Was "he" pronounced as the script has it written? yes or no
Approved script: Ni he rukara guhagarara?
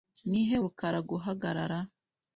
yes